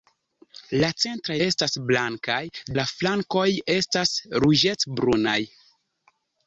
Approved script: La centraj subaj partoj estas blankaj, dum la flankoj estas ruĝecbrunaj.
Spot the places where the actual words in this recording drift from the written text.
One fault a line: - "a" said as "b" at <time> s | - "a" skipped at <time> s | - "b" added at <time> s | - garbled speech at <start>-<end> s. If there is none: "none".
- "subaj partoj" skipped at 1.4 s
- "dum" skipped at 2.4 s